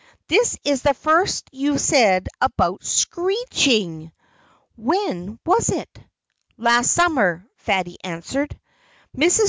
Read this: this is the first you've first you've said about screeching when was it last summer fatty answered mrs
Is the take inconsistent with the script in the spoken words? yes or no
yes